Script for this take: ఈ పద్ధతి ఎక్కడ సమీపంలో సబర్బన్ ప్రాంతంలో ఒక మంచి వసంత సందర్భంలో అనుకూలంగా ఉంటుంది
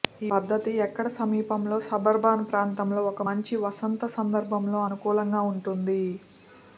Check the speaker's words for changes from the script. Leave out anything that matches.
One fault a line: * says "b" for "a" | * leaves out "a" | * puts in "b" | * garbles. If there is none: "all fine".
all fine